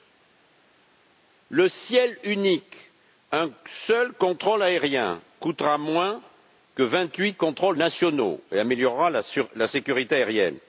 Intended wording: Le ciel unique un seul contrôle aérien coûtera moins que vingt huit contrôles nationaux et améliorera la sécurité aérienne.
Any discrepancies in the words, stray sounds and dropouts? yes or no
no